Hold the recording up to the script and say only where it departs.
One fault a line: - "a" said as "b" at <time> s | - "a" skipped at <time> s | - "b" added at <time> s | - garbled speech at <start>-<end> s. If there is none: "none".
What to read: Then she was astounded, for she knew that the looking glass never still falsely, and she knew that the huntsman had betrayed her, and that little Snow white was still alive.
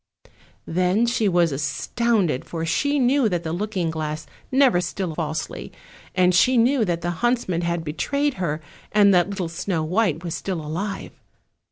none